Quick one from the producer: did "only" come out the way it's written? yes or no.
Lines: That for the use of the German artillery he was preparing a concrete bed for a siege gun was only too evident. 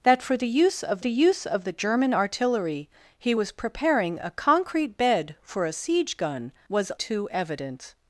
no